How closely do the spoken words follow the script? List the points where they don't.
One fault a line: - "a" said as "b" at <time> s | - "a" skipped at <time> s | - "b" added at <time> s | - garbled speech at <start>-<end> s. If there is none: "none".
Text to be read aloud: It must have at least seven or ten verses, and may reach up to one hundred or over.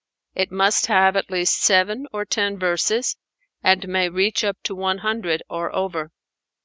none